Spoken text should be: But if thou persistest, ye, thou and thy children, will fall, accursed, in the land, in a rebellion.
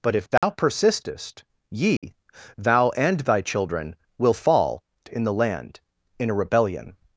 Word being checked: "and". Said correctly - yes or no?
yes